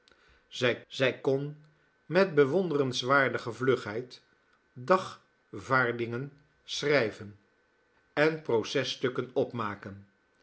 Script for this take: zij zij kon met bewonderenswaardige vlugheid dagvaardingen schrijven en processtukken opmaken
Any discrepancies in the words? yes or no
no